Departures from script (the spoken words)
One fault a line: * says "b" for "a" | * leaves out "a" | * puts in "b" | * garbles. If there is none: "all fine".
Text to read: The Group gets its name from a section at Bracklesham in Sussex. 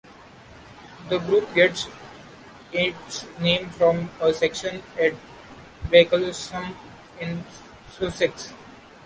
all fine